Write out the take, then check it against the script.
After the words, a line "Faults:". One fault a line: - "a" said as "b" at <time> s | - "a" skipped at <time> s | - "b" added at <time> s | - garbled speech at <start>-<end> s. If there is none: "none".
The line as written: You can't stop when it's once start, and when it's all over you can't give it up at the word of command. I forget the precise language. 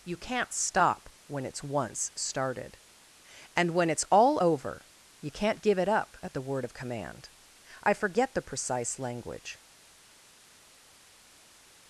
You can't stop when it's once started, and when it's all over you can't give it up at the word of command. I forget the precise language.
Faults:
- "start" said as "started" at 2.1 s